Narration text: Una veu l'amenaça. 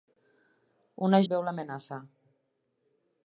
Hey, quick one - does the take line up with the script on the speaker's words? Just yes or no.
yes